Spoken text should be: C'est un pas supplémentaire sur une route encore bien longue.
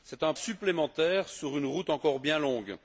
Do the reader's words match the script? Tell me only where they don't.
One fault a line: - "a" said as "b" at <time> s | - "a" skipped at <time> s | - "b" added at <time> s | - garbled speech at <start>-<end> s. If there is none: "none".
- "pas" skipped at 0.3 s